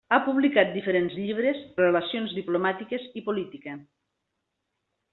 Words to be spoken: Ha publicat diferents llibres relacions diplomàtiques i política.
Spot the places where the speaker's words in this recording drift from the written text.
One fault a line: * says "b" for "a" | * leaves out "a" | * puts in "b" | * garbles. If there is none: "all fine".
all fine